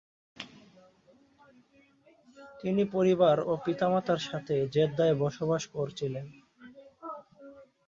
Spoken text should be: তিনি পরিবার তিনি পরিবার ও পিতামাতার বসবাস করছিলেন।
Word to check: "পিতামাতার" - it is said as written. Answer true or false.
false